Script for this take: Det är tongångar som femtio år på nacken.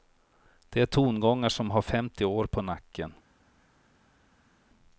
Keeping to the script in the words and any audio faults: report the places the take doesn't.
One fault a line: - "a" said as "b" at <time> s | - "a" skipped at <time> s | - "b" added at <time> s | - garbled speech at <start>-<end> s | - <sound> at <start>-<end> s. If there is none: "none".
- "har" added at 1.7 s